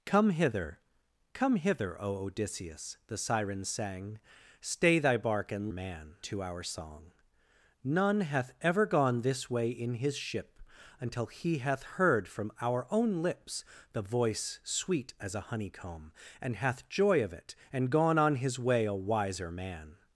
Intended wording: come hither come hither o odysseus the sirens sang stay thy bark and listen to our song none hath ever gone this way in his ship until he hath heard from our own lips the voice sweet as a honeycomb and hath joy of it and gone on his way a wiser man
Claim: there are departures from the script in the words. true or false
true